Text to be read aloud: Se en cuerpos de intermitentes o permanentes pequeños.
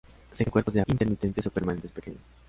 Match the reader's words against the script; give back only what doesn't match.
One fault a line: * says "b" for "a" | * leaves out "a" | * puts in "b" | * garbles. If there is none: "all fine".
all fine